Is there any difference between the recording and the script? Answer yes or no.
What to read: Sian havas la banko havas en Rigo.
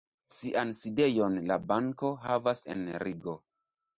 yes